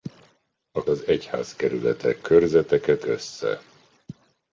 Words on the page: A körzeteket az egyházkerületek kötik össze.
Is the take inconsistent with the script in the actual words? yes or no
yes